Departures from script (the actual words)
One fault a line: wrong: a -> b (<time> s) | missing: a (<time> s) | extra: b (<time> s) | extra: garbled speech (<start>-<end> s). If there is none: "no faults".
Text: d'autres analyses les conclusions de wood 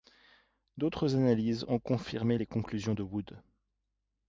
extra: ont confirmé (1.7 s)